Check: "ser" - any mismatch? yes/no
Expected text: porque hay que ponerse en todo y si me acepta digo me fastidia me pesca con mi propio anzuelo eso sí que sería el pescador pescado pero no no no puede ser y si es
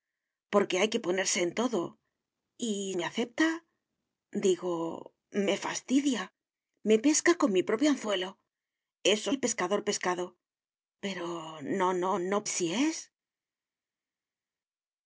yes